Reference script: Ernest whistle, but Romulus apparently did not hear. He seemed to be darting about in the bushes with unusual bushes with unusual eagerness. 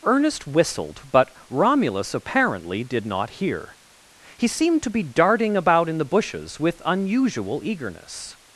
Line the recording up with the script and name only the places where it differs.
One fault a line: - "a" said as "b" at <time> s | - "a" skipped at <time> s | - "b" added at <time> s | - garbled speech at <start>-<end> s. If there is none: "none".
- "whistle" said as "whistled" at 0.5 s
- "bushes with unusual" skipped at 7.6 s